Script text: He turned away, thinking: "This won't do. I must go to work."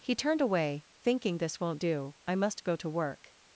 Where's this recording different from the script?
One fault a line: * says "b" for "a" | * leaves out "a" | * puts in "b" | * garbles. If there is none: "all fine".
all fine